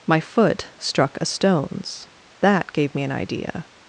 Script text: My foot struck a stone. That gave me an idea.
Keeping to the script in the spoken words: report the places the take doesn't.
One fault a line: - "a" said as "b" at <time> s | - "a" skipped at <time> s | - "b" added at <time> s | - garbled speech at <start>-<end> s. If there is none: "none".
- "stone" said as "stones" at 1.2 s